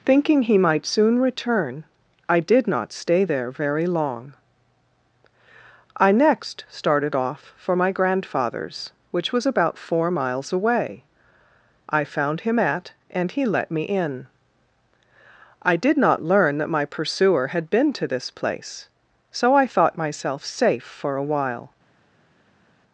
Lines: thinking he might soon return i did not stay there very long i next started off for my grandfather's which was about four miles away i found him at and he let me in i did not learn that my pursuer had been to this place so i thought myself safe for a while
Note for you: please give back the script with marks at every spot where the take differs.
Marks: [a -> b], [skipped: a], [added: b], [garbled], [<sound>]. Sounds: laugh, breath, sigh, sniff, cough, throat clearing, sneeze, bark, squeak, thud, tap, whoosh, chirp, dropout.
thinking he might soon return i did not stay there very long i next started off for my grandfather's which was about four miles away i found him at and he let me in i did not learn that my pursuer had been to this place so i thought myself safe for a while